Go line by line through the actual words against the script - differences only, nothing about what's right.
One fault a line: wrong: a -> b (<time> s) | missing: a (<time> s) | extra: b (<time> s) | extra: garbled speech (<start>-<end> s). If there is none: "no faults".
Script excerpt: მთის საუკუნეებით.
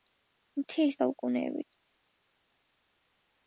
no faults